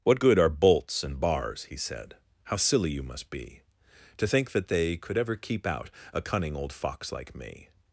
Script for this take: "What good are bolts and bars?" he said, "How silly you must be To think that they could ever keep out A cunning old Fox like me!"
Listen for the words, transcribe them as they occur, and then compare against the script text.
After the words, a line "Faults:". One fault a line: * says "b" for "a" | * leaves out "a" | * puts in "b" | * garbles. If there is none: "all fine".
"What good are bolts and bars?" he said, "How silly you must be To think that they could ever keep out A cunning old Fox like me!"
Faults:
all fine